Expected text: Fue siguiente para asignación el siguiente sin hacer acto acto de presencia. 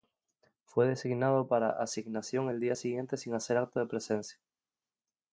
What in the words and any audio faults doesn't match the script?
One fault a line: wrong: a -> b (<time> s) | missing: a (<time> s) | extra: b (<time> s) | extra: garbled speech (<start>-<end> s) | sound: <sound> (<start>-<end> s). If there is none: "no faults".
wrong: siguiente -> designado (0.9 s)
extra: día (2.6 s)
missing: acto (3.8 s)